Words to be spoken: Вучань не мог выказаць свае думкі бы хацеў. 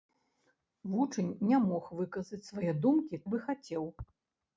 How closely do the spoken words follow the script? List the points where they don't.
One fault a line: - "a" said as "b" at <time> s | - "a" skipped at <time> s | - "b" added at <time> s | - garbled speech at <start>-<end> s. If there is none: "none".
none